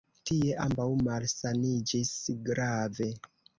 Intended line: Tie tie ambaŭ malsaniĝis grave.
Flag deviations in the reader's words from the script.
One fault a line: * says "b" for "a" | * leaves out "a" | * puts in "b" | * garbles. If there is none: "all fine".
* leaves out "tie"